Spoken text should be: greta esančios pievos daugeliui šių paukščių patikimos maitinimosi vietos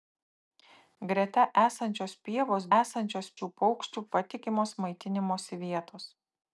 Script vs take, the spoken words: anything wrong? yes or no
yes